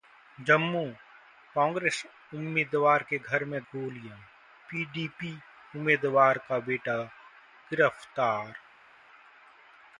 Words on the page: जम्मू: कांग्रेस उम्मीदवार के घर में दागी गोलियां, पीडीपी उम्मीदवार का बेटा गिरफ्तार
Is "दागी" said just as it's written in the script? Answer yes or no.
no